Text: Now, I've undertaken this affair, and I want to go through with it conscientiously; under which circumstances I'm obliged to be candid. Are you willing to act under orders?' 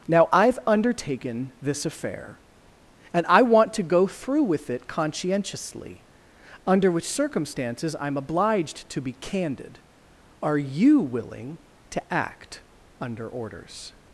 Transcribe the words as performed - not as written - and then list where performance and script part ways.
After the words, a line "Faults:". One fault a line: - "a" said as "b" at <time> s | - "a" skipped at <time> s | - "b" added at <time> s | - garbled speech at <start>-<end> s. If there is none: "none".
Now, I've undertaken this affair, and I want to go through with it conscientiously; under which circumstances I'm obliged to be candid. Are you willing to act under orders?'
Faults:
none